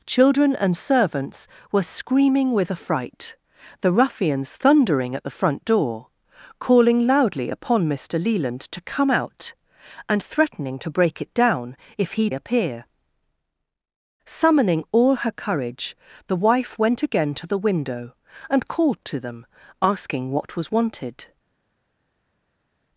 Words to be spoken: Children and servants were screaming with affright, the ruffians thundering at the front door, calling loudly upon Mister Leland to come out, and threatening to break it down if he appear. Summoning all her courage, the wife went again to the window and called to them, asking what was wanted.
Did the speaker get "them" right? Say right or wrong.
right